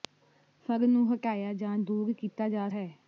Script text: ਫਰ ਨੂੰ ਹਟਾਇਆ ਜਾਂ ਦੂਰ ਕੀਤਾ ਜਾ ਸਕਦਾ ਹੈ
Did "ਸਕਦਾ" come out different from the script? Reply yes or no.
yes